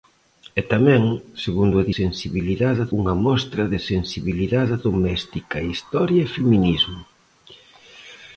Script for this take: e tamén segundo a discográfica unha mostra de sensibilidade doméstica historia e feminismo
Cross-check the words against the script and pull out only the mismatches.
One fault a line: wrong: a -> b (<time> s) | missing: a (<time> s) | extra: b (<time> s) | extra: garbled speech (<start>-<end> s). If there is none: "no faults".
wrong: discográfica -> sensibilidade (2.0 s)